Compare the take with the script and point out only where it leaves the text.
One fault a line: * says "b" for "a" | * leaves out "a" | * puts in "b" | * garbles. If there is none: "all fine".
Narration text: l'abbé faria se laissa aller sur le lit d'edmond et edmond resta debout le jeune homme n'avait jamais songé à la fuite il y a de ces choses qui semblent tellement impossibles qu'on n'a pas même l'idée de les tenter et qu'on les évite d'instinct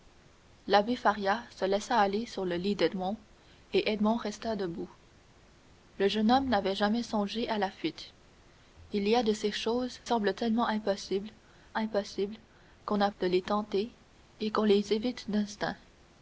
* leaves out "qui"
* puts in "impossibles"
* leaves out "pas même l'idée"